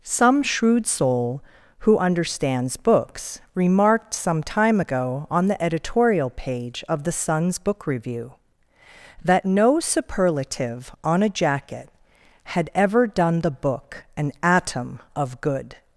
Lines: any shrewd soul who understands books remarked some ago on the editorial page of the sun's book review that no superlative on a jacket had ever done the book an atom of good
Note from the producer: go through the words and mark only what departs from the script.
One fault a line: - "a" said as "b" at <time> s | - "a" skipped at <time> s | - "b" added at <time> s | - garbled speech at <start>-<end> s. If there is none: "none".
- "any" said as "some" at 0.0 s
- "time" added at 4.4 s